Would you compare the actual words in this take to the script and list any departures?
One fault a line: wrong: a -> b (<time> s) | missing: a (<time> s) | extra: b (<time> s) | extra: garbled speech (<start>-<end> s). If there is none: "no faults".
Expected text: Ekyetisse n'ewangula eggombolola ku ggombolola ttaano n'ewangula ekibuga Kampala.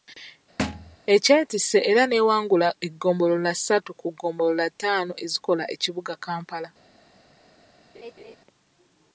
extra: era (1.9 s)
extra: ssatu (3.6 s)
wrong: n'ewangula -> ezikola (5.2 s)